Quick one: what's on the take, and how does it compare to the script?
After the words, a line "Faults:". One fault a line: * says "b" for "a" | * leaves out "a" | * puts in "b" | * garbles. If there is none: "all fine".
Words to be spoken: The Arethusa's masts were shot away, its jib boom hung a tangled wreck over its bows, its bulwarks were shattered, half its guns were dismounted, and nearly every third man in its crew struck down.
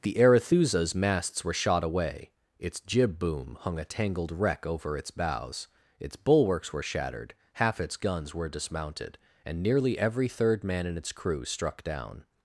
The Arethusa's masts were shot away, its jib boom hung a tangled wreck over its bows, its bulwarks were shattered, half its guns were dismounted, and nearly every third man in its crew struck down.
Faults:
all fine